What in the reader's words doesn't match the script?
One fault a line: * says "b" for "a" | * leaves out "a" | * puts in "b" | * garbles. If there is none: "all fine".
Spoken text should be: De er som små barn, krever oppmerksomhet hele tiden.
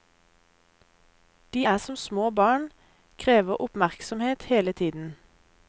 all fine